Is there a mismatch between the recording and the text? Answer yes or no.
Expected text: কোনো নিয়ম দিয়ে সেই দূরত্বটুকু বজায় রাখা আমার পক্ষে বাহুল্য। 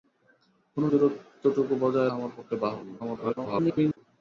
yes